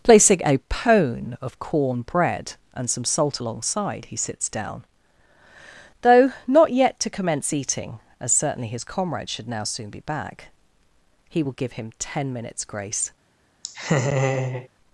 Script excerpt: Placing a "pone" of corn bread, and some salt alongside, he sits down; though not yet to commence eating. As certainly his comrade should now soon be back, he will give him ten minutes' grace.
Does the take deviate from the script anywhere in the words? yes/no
no